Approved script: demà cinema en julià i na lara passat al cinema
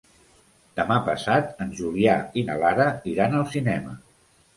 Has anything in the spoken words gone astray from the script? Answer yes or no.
yes